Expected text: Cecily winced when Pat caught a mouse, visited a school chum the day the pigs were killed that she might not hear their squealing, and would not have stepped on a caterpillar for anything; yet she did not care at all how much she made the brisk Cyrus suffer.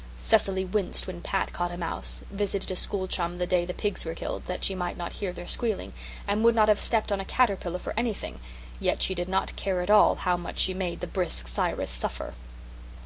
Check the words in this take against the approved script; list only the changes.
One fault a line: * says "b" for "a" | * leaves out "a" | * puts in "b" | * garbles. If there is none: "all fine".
all fine